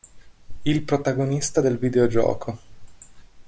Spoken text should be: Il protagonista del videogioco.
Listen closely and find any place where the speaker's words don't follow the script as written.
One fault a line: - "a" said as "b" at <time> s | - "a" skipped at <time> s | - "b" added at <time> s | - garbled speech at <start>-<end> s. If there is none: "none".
none